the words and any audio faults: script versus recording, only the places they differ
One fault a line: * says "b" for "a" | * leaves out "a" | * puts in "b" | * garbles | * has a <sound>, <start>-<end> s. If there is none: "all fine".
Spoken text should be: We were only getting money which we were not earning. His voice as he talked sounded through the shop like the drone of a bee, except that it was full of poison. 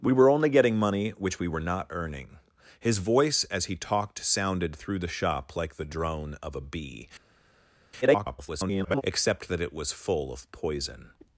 * garbles